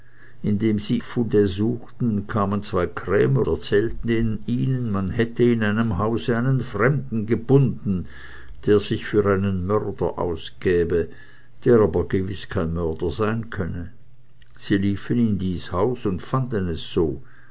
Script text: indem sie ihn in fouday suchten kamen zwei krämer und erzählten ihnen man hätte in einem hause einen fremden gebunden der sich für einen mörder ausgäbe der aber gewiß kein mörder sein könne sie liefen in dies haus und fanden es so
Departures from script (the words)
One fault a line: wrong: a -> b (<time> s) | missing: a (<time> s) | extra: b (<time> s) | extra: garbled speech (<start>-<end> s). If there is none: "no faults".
missing: ihn in (1.0 s)
missing: und (3.4 s)